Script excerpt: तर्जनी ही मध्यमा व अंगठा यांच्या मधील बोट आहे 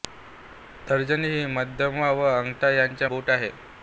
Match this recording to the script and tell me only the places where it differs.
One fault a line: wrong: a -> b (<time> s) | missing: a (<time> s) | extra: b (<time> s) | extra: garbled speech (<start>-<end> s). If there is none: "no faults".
missing: मधील (3.1 s)